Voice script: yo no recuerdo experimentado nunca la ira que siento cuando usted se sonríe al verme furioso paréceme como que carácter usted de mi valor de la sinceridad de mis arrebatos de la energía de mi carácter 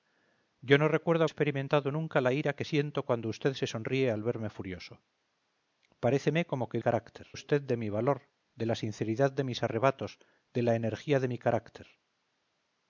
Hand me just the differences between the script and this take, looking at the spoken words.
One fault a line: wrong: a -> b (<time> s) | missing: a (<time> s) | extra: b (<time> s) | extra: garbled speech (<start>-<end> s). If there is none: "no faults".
no faults